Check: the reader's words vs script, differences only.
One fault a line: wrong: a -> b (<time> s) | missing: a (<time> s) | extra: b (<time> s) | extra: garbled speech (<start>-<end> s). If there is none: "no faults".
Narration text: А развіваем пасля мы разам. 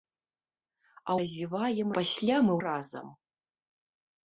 no faults